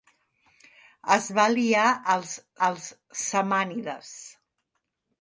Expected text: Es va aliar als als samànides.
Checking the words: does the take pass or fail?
pass